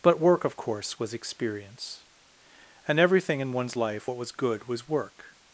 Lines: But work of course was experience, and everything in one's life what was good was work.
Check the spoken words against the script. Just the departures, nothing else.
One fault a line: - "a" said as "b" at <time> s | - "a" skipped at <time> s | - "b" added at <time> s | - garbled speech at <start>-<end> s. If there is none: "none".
none